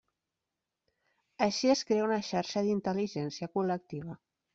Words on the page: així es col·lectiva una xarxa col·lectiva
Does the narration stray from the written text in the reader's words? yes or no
yes